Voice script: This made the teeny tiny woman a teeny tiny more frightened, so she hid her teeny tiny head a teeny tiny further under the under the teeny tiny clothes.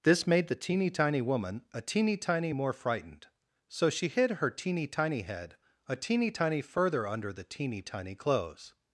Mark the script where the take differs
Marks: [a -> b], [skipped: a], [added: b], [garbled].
This made the teeny tiny woman a teeny tiny more frightened, so she hid her teeny tiny head a teeny tiny further under the [skipped: under the] teeny tiny clothes.